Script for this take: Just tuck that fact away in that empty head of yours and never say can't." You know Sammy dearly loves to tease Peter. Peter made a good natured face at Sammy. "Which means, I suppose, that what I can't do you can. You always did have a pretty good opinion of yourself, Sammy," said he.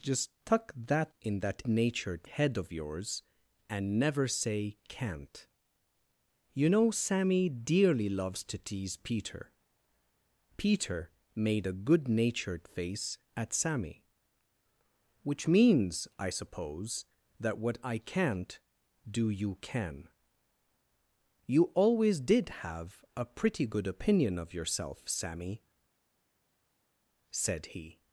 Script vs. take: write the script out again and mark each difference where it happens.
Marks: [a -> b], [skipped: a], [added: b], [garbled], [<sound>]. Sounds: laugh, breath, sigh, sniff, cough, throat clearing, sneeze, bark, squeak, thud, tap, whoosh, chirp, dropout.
Just tuck that [skipped: fact away] in that [empty -> natured] head of yours and never say can't." You know Sammy dearly loves to tease Peter. Peter made a good natured face at Sammy. "Which means, I suppose, that what I can't do you can. You always did have a pretty good opinion of yourself, Sammy," said he.